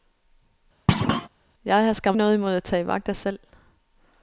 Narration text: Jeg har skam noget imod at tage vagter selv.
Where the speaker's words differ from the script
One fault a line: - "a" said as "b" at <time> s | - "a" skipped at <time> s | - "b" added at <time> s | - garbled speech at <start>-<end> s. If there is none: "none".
none